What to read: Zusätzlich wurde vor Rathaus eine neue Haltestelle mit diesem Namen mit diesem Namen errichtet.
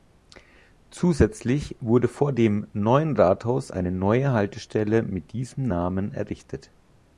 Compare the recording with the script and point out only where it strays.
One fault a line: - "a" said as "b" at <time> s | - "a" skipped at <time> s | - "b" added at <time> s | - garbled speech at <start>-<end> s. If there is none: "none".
- "dem Neuen" added at 2.3 s
- "mit diesem Namen" skipped at 6.1 s